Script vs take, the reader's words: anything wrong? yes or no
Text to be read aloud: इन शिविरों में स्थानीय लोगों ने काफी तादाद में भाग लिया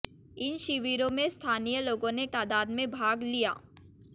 yes